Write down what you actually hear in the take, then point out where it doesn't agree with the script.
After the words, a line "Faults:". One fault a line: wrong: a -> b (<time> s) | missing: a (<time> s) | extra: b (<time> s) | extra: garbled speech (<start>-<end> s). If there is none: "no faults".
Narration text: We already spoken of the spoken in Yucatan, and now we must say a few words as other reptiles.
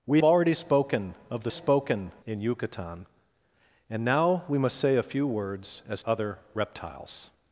We already spoken of the spoken in Yucatan, and now we must say a few words as other reptiles.
Faults:
no faults